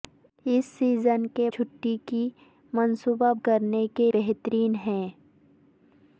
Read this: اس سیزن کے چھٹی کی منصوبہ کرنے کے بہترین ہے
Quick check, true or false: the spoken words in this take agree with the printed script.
true